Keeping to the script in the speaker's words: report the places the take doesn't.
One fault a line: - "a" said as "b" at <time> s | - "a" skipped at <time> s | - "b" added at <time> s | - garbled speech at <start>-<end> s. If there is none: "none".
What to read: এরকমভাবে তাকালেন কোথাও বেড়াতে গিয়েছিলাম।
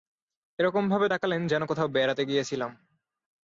- "যেন" added at 1.5 s